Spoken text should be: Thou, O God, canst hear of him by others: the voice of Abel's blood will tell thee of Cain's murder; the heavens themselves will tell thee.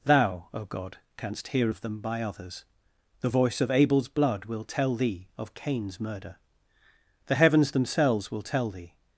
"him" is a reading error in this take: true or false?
true